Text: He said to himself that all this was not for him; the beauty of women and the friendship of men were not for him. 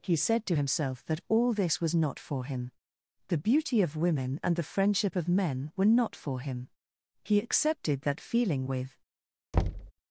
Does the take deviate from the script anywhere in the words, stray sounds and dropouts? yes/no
yes